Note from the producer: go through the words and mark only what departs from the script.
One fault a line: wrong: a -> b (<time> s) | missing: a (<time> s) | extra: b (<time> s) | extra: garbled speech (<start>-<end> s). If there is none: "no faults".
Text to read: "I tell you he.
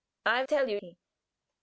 no faults